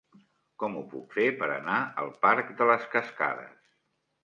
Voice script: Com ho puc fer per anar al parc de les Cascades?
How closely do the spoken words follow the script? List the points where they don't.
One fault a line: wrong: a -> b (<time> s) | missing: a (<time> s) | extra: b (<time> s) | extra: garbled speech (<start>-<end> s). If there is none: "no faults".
no faults